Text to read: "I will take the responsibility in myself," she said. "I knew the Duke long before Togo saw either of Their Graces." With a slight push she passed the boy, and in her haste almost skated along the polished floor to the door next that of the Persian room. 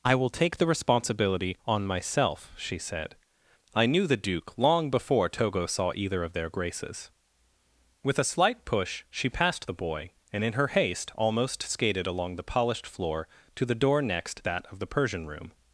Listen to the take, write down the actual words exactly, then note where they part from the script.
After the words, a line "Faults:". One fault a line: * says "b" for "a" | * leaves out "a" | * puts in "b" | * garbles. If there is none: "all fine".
"I will take the responsibility on myself," she said. "I knew the Duke long before Togo saw either of Their Graces." With a slight push she passed the boy, and in her haste almost skated along the polished floor to the door next that of the Persian room.
Faults:
* says "on" for "in"